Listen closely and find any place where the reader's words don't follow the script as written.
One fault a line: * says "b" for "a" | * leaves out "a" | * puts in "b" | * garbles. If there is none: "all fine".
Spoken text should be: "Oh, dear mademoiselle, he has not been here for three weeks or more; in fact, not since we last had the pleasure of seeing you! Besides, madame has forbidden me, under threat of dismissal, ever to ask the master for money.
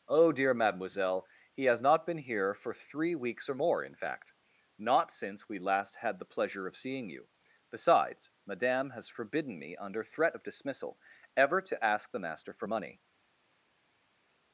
all fine